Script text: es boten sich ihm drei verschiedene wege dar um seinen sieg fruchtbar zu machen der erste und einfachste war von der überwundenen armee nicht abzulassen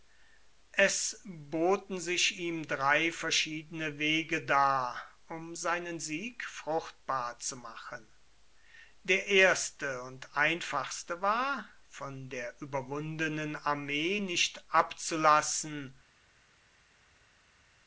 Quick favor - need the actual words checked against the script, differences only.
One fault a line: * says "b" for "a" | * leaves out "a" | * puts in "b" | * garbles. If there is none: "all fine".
all fine